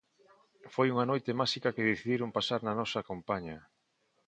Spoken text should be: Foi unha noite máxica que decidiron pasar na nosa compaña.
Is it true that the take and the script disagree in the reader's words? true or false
false